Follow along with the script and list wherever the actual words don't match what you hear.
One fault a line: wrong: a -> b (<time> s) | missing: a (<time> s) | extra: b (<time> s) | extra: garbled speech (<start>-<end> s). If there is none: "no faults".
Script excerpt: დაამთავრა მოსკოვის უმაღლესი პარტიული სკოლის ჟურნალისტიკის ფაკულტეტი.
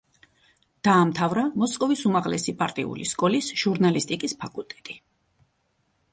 no faults